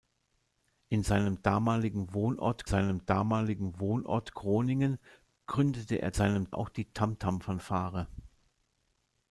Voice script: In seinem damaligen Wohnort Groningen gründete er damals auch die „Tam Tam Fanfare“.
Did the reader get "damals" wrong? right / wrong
wrong